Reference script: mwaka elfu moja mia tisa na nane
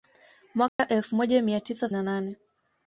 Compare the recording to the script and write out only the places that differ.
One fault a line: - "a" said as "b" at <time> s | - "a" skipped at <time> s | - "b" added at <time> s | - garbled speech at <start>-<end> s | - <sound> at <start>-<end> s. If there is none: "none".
- dropout at 0.7-0.8 s